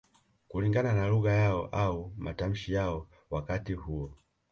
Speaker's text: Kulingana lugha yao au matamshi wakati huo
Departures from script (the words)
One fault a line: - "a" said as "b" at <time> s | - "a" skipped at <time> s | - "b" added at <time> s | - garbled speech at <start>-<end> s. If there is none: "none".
- "na" added at 0.9 s
- "yao" added at 2.7 s